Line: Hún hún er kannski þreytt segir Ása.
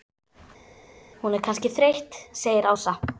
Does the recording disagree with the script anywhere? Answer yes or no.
yes